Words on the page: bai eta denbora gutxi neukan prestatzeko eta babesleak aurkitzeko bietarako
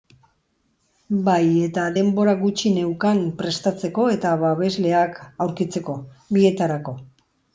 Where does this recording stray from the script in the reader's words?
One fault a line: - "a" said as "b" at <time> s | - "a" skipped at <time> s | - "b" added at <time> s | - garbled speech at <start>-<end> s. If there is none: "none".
none